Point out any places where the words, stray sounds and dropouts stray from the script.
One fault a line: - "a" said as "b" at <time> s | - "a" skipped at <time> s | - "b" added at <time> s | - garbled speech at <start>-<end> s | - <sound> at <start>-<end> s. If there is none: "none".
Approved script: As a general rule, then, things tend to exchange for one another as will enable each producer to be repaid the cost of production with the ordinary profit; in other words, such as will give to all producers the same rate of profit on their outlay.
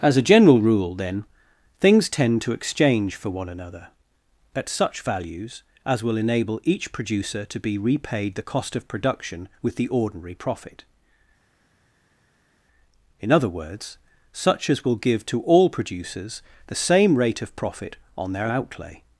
- "at such values" added at 4.5 s